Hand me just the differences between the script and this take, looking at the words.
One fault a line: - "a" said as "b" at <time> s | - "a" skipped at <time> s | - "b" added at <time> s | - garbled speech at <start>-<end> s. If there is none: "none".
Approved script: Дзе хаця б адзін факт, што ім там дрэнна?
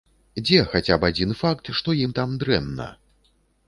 none